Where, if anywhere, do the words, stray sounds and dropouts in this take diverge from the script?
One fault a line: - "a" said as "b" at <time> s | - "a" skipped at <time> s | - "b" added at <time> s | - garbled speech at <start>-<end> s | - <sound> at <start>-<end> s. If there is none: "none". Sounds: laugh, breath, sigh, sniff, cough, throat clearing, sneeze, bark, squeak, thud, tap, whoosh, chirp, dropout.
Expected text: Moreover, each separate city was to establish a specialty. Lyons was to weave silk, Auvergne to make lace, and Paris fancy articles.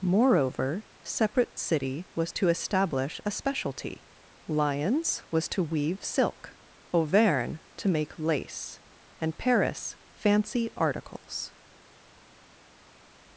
- "each" skipped at 0.9 s